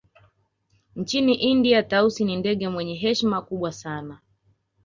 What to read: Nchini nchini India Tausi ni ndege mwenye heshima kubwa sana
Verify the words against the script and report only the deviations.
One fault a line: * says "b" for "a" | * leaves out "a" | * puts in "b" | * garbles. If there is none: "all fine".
* leaves out "nchini"